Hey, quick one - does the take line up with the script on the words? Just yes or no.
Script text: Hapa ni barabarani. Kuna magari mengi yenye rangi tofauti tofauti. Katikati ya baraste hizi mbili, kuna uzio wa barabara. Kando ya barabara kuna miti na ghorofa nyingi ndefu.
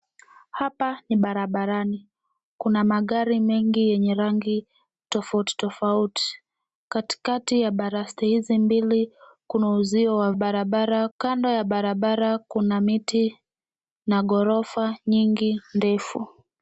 yes